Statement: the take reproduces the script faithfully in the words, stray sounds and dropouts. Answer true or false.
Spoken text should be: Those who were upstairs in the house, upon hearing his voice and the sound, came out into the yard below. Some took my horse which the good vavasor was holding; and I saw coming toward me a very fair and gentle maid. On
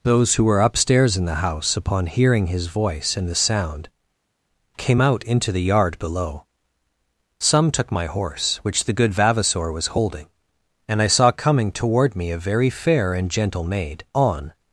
true